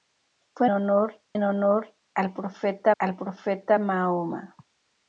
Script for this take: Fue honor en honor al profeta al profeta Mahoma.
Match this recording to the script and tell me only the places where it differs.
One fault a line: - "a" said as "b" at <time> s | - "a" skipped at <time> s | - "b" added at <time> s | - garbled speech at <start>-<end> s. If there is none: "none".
none